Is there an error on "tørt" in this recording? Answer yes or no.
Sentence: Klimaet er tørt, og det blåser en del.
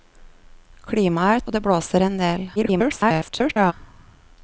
yes